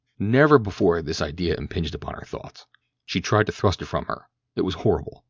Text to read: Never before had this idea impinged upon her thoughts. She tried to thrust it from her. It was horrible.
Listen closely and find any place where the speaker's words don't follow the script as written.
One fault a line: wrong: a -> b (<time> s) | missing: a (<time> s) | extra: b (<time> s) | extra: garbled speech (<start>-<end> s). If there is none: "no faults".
no faults